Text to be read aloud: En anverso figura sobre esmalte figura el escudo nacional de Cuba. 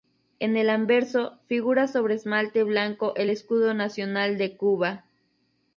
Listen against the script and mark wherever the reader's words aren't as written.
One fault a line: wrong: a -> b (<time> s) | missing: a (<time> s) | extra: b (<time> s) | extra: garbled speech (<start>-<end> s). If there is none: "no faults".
extra: el (0.6 s)
wrong: figura -> blanco (2.6 s)